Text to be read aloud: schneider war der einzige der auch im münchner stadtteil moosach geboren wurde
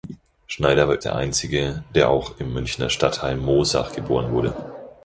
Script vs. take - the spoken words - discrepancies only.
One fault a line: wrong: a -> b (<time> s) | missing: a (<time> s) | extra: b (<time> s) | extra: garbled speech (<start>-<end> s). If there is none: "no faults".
no faults